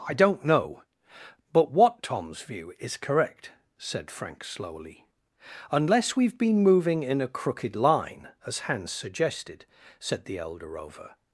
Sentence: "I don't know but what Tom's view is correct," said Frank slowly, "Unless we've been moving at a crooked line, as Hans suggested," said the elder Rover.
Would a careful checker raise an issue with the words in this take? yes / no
yes